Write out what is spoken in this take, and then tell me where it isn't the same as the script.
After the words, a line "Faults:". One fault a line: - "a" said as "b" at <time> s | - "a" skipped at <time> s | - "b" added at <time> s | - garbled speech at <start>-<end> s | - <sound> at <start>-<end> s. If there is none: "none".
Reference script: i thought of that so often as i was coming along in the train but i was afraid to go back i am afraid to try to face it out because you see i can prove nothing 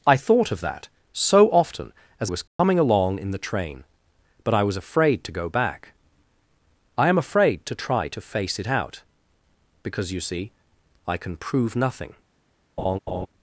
i thought of that so often as was coming along in the train but i was afraid to go back i am afraid to try to face it out because you see i can prove nothing
Faults:
- "i" skipped at 2.3 s
- dropout at 2.5-2.6 s
- laugh at 12.8-13.3 s